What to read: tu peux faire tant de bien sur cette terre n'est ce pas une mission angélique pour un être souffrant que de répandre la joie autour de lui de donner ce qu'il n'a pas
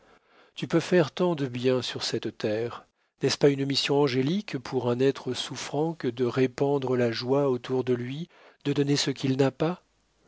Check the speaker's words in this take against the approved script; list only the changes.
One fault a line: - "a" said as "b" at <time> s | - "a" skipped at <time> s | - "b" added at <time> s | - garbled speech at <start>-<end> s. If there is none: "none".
none